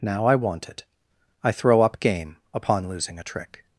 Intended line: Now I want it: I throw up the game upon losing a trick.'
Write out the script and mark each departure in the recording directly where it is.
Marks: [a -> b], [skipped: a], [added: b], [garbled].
Now I want it: I throw up [skipped: the] game upon losing a trick.'